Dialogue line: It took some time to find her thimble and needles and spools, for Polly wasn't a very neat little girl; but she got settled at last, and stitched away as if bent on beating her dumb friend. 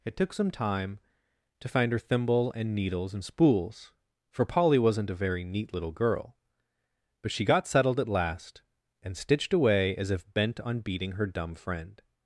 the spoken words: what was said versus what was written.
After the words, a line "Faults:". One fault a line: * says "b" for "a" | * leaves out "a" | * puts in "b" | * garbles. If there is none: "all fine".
It took some time to find her thimble and needles and spools, for Polly wasn't a very neat little girl; but she got settled at last, and stitched away as if bent on beating her dumb friend.
Faults:
all fine